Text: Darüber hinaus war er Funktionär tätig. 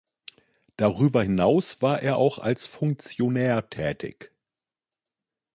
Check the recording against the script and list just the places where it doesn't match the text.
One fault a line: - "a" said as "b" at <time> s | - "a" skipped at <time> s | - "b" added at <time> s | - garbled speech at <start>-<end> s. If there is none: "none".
- "auch als" added at 2.1 s